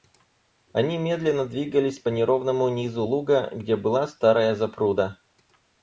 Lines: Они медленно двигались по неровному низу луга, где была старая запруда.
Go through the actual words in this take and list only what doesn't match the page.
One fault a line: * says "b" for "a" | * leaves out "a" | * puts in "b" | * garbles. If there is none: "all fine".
all fine